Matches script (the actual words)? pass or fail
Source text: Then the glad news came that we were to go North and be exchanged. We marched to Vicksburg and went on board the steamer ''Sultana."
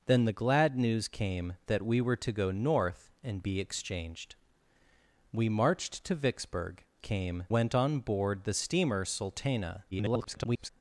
fail